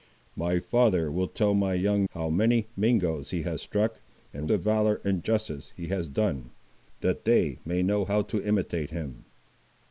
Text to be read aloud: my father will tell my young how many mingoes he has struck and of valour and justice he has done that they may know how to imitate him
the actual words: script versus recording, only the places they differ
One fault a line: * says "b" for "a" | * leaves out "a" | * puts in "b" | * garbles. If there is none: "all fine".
all fine